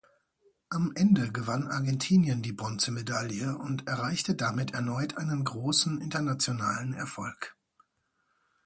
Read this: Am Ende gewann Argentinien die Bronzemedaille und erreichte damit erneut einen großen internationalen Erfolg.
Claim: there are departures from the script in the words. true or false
false